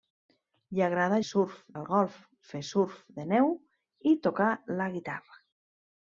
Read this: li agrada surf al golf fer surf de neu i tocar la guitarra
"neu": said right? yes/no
yes